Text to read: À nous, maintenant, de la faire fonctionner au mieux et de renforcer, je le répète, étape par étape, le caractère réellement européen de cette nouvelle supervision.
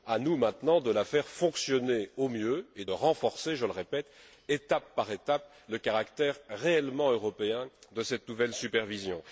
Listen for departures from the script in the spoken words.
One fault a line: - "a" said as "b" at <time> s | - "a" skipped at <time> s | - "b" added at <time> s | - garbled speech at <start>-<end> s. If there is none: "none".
- "de" skipped at 2.9 s